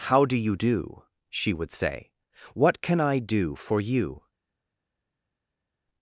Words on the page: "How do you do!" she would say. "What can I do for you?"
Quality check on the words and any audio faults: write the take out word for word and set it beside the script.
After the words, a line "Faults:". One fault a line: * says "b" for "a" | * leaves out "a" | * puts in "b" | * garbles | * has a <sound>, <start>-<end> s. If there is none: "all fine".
"How do you do!" she would say. "What can I do for you?"
Faults:
all fine